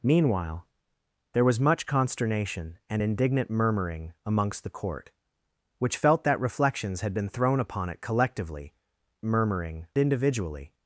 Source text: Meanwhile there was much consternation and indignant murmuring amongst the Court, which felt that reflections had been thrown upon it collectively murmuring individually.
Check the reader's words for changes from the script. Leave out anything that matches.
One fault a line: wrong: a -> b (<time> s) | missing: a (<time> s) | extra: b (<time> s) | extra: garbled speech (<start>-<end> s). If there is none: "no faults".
no faults